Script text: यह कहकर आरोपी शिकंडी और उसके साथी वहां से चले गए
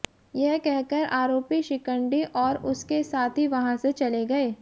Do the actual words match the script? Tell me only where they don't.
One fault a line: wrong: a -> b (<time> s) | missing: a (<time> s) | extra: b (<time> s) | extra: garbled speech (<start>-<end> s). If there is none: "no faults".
no faults